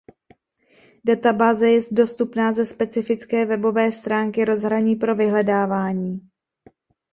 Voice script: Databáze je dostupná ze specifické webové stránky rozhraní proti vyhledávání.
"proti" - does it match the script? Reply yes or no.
no